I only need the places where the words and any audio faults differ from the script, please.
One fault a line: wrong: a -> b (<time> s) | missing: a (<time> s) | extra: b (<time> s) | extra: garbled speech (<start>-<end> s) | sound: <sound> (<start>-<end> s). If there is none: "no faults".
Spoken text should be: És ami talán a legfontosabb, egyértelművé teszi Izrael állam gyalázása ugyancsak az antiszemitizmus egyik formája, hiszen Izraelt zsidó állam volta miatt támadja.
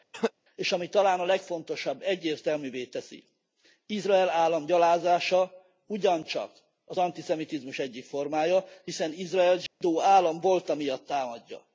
sound: cough (0.1-0.3 s)
sound: dropout (9.7-9.8 s)